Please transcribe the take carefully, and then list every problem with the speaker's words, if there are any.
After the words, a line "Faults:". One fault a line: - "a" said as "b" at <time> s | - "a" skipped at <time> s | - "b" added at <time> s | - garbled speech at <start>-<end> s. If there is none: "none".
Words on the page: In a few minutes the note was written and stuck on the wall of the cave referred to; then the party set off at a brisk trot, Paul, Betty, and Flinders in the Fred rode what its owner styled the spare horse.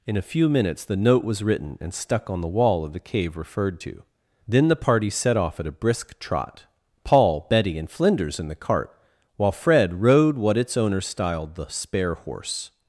In a few minutes the note was written and stuck on the wall of the cave referred to; then the party set off at a brisk trot, Paul, Betty, and Flinders in the cart, while Fred rode what its owner styled the spare horse.
Faults:
- "cart while" added at 8.6 s